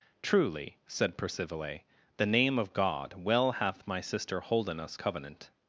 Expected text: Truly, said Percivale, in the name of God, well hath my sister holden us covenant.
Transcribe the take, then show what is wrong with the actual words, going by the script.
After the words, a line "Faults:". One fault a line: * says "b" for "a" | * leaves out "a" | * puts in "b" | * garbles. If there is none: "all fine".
Truly, said Percivale, the name of God, well hath my sister holden us covenant.
Faults:
* leaves out "in"